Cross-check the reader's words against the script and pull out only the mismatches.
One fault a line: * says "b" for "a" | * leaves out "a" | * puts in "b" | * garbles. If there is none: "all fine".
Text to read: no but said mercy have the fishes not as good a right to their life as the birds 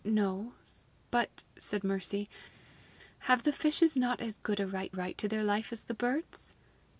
* puts in "right"